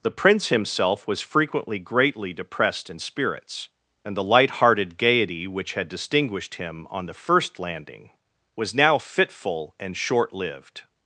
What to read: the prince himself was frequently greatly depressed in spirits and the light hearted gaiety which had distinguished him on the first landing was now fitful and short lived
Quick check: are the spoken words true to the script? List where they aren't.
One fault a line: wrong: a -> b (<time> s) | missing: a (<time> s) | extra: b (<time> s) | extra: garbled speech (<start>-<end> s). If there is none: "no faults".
no faults